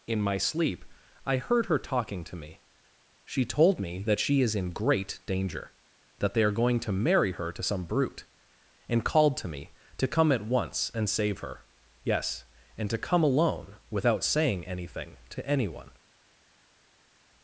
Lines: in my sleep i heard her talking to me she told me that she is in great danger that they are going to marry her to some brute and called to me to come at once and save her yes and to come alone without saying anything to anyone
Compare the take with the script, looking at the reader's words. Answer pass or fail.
pass